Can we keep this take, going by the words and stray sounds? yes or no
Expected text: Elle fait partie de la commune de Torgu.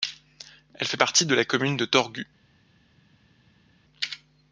yes